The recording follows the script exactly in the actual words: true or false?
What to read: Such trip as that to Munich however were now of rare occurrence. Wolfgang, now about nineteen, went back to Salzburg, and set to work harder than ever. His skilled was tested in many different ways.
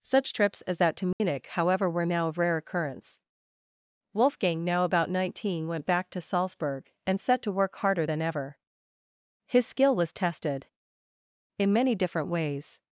false